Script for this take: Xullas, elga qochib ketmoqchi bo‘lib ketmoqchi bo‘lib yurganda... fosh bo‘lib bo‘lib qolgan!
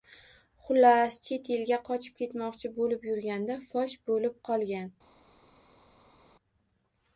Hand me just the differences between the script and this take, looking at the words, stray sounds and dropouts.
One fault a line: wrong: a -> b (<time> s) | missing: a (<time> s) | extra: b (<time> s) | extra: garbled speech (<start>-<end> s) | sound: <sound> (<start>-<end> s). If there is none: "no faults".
extra: chet (1.3 s)
missing: ketmoqchi bo‘lib (3.1 s)
missing: bo‘lib (4.4 s)